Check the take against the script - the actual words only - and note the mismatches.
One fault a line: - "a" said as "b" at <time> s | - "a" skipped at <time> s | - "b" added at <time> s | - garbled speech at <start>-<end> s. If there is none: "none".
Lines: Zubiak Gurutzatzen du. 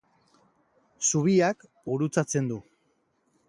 none